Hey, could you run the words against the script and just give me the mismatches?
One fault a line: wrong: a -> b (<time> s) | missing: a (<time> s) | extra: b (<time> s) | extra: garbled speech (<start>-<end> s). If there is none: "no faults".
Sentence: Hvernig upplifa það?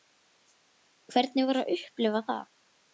extra: var að (1.5 s)